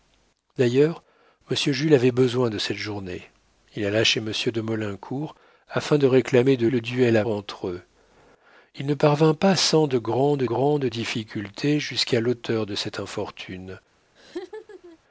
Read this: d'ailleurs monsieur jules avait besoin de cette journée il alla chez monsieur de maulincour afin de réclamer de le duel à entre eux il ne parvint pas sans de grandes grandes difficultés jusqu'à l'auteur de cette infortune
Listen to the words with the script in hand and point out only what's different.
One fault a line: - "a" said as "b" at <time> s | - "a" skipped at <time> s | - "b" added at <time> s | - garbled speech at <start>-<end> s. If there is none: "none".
none